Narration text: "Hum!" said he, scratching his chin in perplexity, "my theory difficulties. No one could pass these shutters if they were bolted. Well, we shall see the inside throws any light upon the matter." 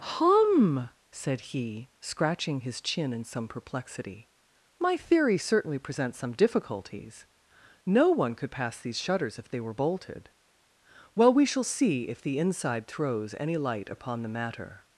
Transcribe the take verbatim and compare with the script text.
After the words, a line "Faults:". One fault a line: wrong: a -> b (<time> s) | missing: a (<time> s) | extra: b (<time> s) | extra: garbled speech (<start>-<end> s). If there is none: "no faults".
"Hum!" said he, scratching his chin in some perplexity, "my theory certainly presents some difficulties. No one could pass these shutters if they were bolted. Well, we shall see if the inside throws any light upon the matter."
Faults:
extra: some (3.2 s)
extra: certainly presents some (5.4 s)
extra: if (12.1 s)